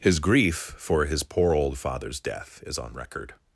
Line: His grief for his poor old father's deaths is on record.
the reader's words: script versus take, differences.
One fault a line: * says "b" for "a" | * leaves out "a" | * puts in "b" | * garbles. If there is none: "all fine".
* says "death" for "deaths"